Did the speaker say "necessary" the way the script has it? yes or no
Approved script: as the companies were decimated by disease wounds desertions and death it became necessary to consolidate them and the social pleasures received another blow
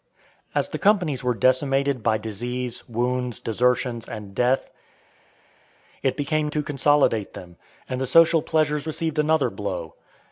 no